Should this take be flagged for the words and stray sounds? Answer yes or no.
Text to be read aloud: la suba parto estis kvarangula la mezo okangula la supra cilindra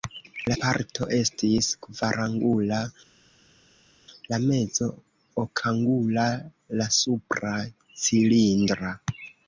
yes